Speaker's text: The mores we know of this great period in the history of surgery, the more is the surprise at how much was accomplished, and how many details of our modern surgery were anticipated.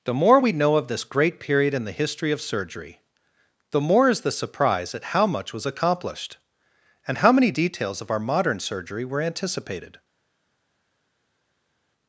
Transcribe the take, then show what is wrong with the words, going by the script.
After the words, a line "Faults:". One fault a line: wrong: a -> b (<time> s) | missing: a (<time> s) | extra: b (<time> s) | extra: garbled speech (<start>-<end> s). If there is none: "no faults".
The more we know of this great period in the history of surgery, the more is the surprise at how much was accomplished, and how many details of our modern surgery were anticipated.
Faults:
wrong: mores -> more (0.1 s)